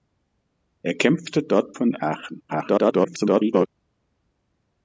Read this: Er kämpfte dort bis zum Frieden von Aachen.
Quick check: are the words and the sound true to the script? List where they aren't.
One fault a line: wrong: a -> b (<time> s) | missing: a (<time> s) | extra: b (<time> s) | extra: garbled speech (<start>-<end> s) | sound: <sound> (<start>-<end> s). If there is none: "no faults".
missing: bis zum Frieden (1.8 s)
extra: garbled speech (2.5-3.7 s)